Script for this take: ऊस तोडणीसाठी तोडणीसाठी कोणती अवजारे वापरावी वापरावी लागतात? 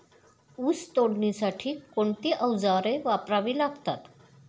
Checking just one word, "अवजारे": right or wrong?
right